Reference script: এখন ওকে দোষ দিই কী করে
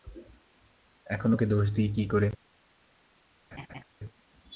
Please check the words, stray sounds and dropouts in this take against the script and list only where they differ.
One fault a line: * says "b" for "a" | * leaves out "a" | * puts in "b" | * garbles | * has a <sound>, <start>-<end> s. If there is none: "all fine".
* has a laugh, 3.5-3.8 s